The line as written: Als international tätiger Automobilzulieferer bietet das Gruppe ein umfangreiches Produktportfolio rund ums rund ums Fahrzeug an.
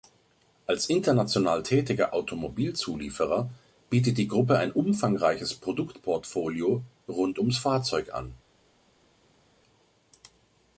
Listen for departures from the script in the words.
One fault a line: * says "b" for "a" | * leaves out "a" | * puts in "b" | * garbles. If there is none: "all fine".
* says "die" for "das"
* leaves out "rund ums"